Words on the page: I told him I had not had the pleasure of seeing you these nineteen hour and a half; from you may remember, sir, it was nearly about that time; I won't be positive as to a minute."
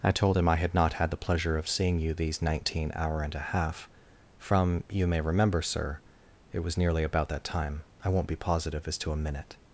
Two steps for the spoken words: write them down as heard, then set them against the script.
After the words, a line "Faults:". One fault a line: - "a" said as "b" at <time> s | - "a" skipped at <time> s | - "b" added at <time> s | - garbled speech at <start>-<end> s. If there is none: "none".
I told him I had not had the pleasure of seeing you these nineteen hour and a half; from you may remember, sir, it was nearly about that time; I won't be positive as to a minute."
Faults:
none